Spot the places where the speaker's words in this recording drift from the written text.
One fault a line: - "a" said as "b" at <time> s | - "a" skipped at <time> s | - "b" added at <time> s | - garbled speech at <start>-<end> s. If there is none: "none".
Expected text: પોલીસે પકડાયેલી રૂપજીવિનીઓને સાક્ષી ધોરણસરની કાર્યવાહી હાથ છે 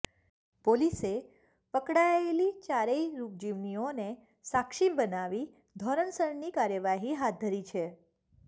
- "ચારેય" added at 2.6 s
- "બનાવી" added at 5.0 s
- "ધરી" added at 7.4 s